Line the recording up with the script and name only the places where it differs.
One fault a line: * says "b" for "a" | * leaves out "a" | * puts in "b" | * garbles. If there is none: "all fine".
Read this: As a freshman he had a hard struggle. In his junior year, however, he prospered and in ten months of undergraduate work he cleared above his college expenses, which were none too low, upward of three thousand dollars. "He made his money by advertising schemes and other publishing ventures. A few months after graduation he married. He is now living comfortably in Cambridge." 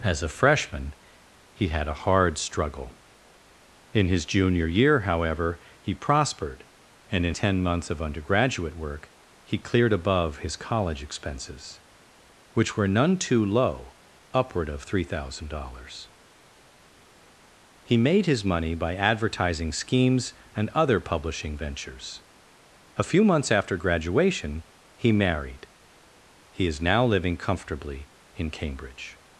all fine